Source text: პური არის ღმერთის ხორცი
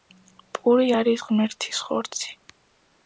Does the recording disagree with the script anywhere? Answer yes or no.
no